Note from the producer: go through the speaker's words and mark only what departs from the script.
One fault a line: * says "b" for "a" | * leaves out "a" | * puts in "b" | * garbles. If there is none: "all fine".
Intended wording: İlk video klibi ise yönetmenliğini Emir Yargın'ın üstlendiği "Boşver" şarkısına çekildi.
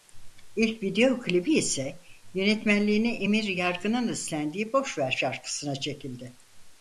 all fine